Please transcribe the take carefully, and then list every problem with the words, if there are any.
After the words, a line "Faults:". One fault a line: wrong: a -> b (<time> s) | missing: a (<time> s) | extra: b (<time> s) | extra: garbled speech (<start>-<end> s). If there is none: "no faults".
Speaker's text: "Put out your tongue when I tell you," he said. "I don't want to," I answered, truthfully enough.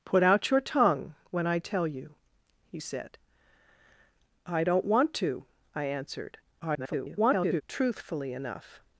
"Put out your tongue when I tell you," he said. "I don't want to," I answered, [garbled] truthfully enough.
Faults:
extra: garbled speech (6.6-7.6 s)